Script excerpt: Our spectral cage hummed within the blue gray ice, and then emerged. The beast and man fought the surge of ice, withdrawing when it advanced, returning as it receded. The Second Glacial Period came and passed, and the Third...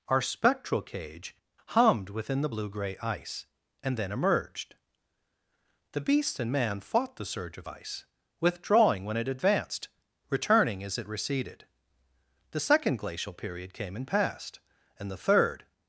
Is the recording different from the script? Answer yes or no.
no